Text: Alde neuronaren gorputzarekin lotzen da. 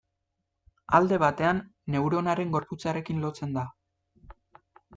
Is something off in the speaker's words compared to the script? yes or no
yes